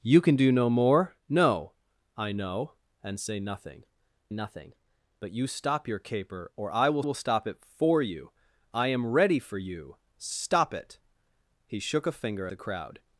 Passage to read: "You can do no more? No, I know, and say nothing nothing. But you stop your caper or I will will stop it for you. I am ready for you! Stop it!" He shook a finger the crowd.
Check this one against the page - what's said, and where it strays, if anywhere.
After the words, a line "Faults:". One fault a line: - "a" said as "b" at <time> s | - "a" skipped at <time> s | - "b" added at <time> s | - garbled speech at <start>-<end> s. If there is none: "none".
"You can do no more? No, I know, and say nothing nothing. But you stop your caper or I will will stop it for you. I am ready for you! Stop it!" He shook a finger the crowd.
Faults:
none